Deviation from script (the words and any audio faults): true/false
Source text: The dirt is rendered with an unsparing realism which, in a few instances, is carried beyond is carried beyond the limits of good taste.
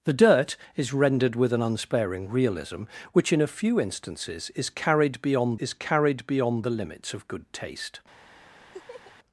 true